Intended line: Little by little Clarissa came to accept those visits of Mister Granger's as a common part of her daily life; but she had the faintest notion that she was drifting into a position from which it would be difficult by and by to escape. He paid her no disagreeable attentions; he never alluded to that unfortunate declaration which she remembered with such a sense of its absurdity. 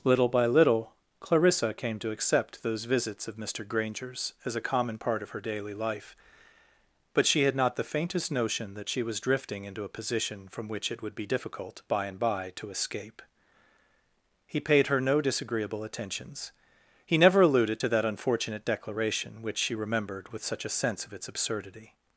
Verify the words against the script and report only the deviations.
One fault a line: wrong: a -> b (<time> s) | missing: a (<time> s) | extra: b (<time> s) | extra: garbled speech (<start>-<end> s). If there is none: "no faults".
extra: not (7.5 s)